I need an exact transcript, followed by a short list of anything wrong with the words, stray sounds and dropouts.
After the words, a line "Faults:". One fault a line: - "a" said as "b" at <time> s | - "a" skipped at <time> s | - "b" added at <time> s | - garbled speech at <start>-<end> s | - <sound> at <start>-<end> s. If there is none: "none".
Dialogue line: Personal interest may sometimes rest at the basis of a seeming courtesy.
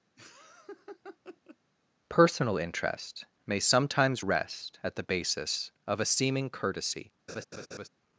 Personal interest may sometimes rest at the basis of a seeming courtesy.
Faults:
- laugh at 0.2-1.6 s
- laugh at 7.3-7.9 s